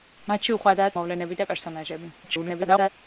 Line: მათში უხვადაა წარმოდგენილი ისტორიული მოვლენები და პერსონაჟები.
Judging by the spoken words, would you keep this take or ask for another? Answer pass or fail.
fail